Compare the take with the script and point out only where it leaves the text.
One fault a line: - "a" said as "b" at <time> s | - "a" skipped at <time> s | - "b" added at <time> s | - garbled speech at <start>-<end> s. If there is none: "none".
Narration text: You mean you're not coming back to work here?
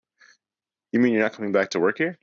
none